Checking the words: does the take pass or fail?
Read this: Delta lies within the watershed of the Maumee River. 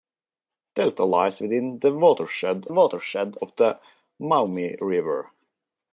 fail